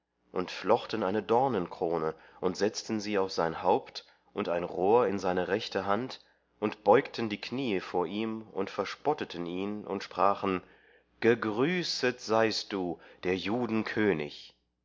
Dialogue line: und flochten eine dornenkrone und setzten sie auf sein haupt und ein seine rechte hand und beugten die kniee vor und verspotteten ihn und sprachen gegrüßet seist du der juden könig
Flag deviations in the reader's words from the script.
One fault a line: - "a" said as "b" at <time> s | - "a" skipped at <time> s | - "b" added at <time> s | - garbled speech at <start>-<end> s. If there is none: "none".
- "rohr in" added at 4.6 s
- "ihm" added at 8.1 s